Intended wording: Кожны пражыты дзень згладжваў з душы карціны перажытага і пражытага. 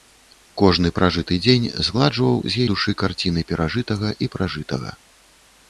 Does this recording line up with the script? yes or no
yes